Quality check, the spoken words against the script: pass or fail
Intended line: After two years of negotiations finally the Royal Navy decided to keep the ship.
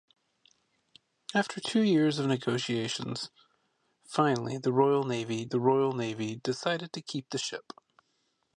fail